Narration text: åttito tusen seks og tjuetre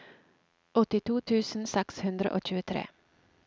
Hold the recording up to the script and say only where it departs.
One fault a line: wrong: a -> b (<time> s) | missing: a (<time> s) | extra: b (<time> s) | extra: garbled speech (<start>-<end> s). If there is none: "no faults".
extra: hundre (2.1 s)